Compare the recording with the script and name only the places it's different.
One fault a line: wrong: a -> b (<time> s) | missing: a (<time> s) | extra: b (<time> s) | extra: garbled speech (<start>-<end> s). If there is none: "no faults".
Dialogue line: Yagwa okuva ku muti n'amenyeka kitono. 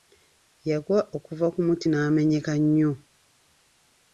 wrong: kitono -> nnyo (2.6 s)